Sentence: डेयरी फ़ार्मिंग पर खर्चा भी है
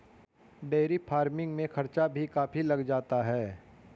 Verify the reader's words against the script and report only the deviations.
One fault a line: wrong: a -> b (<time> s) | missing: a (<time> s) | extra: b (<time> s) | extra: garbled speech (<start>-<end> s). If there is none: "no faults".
wrong: पर -> में (1.6 s)
extra: काफी लग जाता (2.3 s)